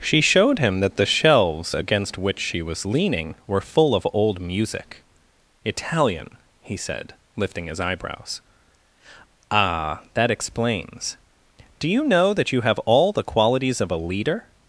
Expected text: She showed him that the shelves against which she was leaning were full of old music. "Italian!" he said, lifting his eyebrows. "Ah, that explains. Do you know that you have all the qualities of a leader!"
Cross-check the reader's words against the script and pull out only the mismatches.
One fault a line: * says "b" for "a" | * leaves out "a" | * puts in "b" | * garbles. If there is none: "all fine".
all fine